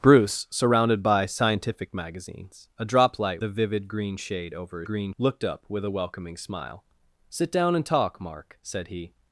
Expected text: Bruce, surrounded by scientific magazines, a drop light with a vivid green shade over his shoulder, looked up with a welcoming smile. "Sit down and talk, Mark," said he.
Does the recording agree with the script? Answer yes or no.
no